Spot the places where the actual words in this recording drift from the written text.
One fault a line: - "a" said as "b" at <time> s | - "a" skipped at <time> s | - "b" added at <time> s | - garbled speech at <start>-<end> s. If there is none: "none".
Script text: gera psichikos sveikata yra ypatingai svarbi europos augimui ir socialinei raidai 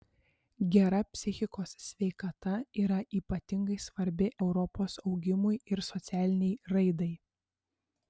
none